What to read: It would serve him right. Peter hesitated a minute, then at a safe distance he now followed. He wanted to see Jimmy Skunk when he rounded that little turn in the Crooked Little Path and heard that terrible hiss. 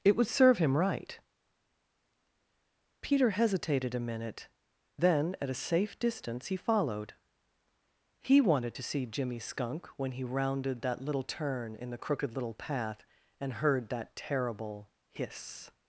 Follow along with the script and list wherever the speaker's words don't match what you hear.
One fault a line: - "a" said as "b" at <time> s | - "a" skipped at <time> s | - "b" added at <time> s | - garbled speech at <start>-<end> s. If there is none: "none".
- "now" skipped at 6.5 s